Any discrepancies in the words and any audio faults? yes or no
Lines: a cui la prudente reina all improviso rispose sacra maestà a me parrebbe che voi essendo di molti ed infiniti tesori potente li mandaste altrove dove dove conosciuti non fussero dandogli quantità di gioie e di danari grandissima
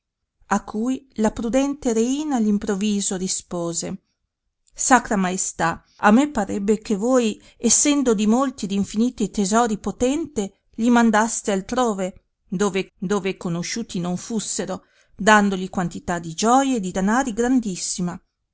no